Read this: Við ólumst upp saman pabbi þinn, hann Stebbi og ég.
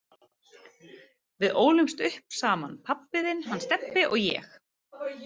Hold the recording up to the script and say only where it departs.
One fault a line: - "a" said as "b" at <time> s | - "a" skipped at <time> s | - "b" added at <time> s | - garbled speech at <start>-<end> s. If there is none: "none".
none